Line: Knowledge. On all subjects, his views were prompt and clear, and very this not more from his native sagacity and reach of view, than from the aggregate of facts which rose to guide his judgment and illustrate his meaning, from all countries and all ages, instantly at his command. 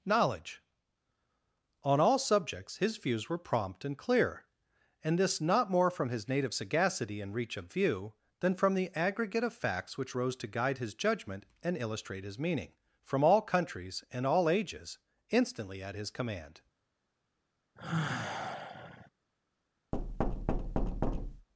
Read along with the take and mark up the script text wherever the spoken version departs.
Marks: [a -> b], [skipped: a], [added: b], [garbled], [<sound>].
Knowledge. On all subjects, his views were prompt and clear, and [skipped: very] this not more from his native sagacity and reach of view, than from the aggregate of facts which rose to guide his judgment and illustrate his meaning, from all countries and all ages, instantly at his command. [sigh] [thud]